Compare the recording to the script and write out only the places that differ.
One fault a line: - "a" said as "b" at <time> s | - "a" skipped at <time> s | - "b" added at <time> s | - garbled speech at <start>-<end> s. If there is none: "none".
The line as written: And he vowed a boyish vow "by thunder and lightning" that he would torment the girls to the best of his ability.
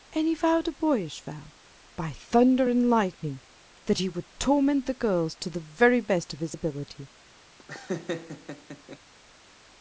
- "very" added at 5.6 s